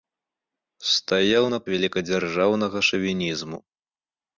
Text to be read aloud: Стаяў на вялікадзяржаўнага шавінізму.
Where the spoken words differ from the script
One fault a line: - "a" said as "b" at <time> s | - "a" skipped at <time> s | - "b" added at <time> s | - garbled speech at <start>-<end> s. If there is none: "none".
none